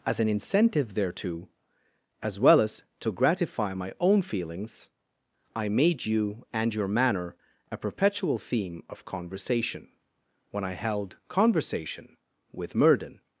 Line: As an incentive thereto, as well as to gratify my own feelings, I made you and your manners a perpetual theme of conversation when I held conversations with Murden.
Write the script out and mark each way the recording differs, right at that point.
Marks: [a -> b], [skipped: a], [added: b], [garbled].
As an incentive thereto, as well as to gratify my own feelings, I made you and your [manners -> manner] a perpetual theme of conversation when I held [conversations -> conversation] with Murden.